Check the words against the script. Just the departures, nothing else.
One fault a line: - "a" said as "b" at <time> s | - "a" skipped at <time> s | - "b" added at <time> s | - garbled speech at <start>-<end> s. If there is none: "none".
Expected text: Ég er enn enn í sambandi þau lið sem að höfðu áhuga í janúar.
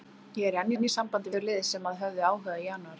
none